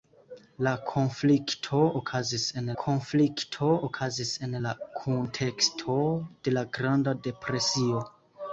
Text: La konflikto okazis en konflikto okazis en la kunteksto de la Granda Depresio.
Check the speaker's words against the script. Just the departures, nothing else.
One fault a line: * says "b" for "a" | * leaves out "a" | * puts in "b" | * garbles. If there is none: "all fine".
all fine